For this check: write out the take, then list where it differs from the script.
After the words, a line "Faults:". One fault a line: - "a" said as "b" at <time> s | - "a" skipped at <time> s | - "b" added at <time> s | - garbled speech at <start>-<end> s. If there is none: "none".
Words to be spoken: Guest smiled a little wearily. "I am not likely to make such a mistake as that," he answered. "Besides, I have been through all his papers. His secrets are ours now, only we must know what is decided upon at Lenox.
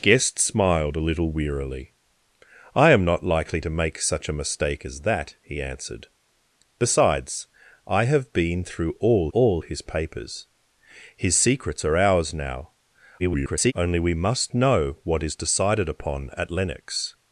Guest smiled a little wearily. "I am not likely to make such a mistake as that," he answered. "Besides, I have been through all all his papers. His secrets are ours now, [garbled] only we must know what is decided upon at Lenox.
Faults:
- "all" added at 9.3 s
- garbled speech at 13.2-13.7 s